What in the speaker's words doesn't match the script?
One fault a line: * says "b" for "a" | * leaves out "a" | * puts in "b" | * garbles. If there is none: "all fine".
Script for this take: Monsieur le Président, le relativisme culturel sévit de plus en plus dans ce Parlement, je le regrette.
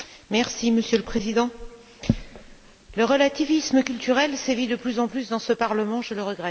all fine